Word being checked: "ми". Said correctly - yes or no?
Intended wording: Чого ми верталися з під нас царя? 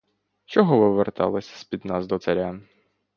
no